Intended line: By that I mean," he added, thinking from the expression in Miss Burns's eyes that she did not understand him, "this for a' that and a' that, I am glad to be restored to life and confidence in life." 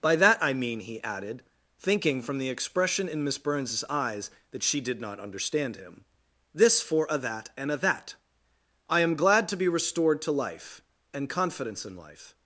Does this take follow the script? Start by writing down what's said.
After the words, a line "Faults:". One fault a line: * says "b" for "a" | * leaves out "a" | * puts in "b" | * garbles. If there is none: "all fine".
By that I mean," he added, thinking from the expression in Miss Burns's eyes that she did not understand him, "this for a' that and a' that, I am glad to be restored to life and confidence in life."
Faults:
all fine